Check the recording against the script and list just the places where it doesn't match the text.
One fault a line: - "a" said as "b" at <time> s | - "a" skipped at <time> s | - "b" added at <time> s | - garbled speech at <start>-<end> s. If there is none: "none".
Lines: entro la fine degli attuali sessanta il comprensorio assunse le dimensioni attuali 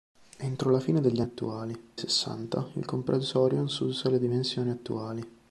none